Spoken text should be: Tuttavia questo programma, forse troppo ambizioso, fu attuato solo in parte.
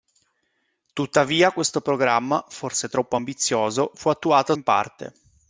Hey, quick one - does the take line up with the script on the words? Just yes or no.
no